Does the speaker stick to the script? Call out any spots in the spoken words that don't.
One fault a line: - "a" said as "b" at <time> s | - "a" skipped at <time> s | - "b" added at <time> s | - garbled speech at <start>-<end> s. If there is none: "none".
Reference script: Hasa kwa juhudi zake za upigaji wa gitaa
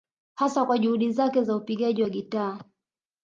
none